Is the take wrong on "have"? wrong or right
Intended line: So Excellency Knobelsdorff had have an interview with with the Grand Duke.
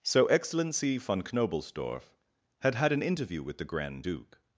wrong